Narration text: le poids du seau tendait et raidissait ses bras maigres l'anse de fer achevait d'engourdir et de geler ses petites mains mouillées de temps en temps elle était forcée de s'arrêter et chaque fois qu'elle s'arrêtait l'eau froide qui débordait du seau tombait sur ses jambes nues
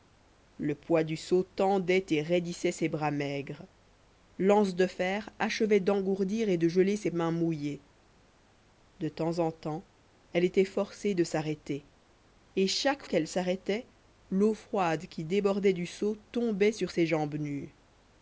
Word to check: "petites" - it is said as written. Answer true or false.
false